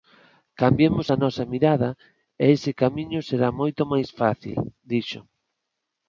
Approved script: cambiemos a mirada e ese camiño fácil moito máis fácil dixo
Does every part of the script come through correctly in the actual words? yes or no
no